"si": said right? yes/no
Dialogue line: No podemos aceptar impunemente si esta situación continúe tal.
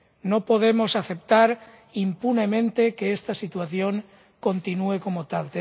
no